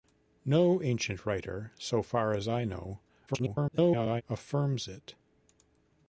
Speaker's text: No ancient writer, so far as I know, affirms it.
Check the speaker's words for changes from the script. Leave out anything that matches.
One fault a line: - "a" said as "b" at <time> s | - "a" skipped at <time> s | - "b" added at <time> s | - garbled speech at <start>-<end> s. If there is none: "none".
- garbled speech at 3.3-4.2 s